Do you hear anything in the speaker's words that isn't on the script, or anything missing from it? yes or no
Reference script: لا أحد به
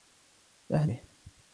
no